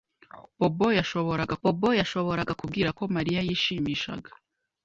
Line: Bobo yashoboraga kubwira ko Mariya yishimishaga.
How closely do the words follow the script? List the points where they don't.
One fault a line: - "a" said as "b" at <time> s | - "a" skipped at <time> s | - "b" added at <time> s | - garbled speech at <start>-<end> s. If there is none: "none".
- "bobo yashoboraga" added at 1.6 s